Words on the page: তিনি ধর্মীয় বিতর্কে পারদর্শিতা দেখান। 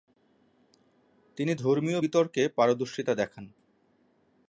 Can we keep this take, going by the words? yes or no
yes